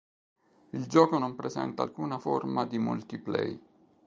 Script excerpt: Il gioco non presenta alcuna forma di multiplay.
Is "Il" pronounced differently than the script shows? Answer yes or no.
no